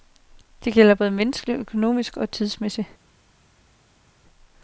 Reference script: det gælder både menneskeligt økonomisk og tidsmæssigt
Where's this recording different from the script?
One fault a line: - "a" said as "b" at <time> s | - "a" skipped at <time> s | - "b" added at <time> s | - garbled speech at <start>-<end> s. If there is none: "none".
none